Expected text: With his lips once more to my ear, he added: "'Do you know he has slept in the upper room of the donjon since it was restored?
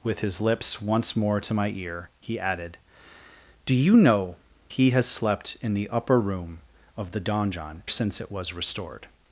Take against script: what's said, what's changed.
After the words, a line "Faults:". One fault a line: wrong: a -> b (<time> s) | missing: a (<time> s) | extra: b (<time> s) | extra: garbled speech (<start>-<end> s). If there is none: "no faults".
With his lips once more to my ear, he added: "'Do you know he has slept in the upper room of the donjon since it was restored?
Faults:
no faults